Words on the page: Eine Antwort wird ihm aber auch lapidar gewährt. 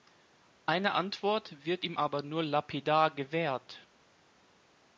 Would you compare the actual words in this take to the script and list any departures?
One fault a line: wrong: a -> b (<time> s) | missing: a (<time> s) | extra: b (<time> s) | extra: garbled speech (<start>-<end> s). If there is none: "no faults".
wrong: auch -> nur (2.2 s)